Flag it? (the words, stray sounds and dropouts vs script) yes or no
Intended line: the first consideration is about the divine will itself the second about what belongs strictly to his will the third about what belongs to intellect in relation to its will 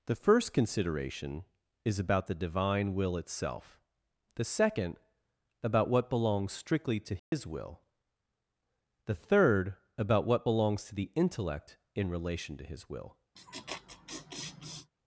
yes